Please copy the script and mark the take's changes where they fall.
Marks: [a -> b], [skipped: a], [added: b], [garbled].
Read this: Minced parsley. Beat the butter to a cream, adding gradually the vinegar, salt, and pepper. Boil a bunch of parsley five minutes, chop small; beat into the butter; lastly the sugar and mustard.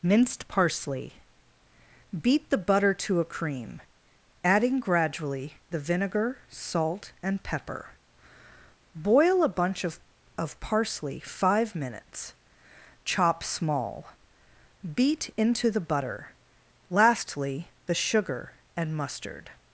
Minced parsley. Beat the butter to a cream, adding gradually the vinegar, salt, and pepper. Boil a bunch of [added: of] parsley five minutes, chop small; beat into the butter; lastly the sugar and mustard.